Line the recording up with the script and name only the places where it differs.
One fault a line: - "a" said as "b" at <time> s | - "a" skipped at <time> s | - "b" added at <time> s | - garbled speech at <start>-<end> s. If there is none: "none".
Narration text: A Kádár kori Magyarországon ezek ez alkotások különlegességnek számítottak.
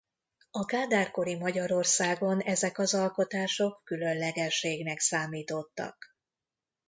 - "ez" said as "az" at 2.8 s